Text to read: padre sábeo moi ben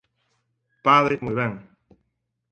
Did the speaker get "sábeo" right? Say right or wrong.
wrong